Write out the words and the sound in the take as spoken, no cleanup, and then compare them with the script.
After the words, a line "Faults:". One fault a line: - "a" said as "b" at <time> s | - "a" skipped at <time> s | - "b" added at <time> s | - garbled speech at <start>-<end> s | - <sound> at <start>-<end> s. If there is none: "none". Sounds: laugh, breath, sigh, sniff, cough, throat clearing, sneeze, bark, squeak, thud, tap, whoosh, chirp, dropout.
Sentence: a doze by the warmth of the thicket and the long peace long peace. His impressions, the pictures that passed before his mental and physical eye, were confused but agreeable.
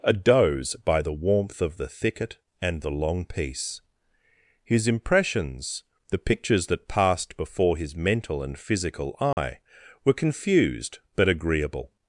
a doze by the warmth of the thicket and the long peace. His impressions, the pictures that passed before his mental and physical eye, were confused but agreeable.
Faults:
- "long peace" skipped at 3.8 s
- dropout at 9.3-9.4 s